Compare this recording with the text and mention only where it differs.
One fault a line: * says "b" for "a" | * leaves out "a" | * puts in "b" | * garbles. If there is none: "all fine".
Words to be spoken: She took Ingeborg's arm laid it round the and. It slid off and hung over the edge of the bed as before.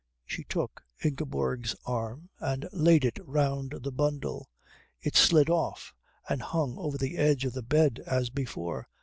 * puts in "and"
* says "bundle" for "and"